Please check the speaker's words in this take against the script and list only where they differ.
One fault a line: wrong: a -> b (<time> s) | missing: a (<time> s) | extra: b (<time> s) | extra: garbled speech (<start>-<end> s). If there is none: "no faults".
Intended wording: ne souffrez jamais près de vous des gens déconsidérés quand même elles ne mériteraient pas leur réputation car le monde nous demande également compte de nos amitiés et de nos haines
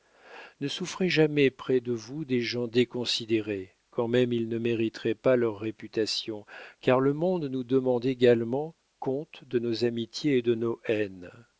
wrong: elles -> ils (4.3 s)